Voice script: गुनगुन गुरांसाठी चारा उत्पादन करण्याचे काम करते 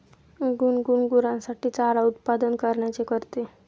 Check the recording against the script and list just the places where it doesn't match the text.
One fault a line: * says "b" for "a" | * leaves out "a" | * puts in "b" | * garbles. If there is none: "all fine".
* leaves out "काम"